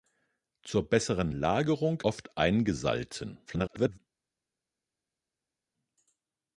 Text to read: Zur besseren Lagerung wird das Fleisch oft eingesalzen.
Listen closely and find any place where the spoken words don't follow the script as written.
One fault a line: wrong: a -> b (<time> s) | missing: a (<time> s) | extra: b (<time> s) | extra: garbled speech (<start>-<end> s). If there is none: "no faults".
missing: wird das Fleisch (2.0 s)
extra: garbled speech (3.5-4.0 s)